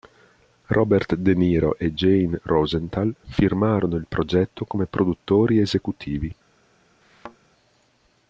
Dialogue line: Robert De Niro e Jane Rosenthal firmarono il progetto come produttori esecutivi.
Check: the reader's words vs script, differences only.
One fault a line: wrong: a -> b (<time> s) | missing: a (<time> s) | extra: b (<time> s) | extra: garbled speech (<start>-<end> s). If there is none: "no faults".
no faults